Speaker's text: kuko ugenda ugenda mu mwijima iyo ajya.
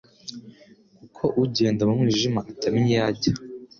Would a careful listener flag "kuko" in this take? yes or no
no